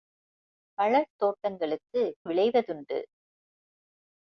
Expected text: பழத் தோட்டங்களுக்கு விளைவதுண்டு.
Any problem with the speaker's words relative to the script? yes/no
no